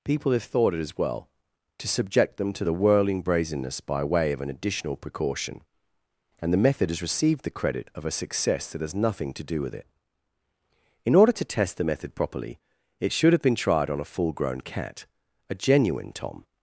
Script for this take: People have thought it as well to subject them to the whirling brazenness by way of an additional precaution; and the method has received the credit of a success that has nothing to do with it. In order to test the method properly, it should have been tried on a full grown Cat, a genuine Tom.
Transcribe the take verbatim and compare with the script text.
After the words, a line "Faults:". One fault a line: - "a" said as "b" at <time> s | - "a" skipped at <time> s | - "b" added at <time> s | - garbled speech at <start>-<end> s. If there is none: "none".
People have thought it as well to subject them to the whirling brazenness by way of an additional precaution; and the method has received the credit of a success that has nothing to do with it. In order to test the method properly, it should have been tried on a full grown Cat, a genuine Tom.
Faults:
none